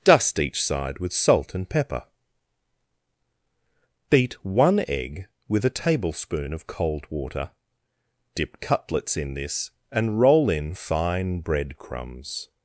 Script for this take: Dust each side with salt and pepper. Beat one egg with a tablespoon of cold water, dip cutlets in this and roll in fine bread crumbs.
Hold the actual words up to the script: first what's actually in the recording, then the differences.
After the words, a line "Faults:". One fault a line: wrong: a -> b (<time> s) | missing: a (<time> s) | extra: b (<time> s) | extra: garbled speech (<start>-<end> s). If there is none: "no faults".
Dust each side with salt and pepper. Beat one egg with a tablespoon of cold water, dip cutlets in this and roll in fine bread crumbs.
Faults:
no faults